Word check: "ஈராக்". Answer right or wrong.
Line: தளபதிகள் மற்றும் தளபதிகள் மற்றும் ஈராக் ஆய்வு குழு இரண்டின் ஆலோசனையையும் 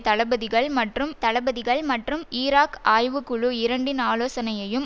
right